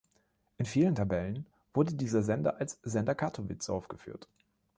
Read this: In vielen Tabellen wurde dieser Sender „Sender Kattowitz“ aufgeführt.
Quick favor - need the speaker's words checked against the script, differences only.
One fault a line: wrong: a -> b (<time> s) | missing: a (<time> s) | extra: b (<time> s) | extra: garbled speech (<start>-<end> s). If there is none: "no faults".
extra: als (2.6 s)